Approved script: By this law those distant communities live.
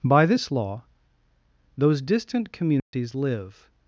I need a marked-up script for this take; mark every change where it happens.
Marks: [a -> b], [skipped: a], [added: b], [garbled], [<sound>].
By this law those distant communities [dropout] live.